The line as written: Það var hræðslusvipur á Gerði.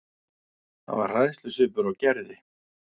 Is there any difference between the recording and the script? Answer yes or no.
no